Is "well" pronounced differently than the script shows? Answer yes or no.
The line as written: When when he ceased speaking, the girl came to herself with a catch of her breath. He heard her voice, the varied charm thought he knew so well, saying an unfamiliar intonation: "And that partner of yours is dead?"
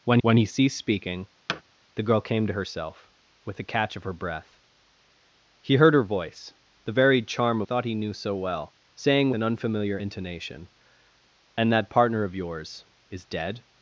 no